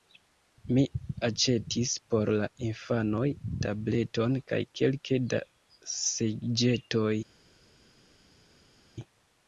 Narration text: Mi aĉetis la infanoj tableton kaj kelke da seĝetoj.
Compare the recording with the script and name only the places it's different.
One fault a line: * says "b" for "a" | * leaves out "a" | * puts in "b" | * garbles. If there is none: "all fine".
* puts in "por"